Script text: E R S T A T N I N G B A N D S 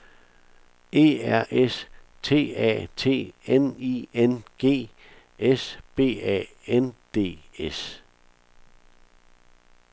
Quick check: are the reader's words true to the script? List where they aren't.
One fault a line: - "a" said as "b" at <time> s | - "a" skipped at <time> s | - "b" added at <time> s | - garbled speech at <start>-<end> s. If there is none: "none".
- "S" added at 5.4 s